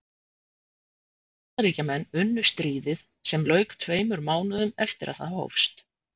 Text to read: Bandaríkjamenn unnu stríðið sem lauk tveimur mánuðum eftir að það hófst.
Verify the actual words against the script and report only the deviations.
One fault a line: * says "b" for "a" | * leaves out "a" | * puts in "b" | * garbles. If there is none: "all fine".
all fine